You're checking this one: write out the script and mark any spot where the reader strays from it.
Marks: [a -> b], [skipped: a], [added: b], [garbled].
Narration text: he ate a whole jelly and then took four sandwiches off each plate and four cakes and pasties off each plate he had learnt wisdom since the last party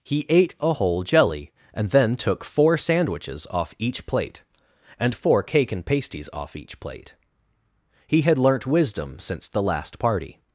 he ate a whole jelly and then took four sandwiches off each plate and four [cakes -> cake] and pasties off each plate he had learnt wisdom since the last party